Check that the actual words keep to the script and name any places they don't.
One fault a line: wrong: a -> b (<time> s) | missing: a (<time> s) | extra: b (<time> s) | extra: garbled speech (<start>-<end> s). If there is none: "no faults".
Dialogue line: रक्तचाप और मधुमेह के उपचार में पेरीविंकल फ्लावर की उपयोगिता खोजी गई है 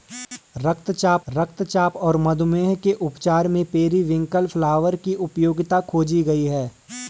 extra: रक्तचाप (1.3 s)